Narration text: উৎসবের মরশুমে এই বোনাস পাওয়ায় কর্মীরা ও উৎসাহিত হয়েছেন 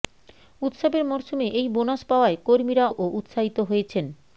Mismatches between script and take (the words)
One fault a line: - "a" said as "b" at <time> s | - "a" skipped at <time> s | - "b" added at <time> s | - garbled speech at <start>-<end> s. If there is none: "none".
none